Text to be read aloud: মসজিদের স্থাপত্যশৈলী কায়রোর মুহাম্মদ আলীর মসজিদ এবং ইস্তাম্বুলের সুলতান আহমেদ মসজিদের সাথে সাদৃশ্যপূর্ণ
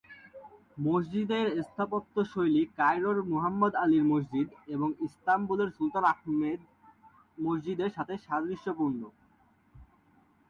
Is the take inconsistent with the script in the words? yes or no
no